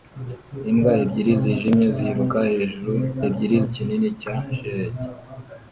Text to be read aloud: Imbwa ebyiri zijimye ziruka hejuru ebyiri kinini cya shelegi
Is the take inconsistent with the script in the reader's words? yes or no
no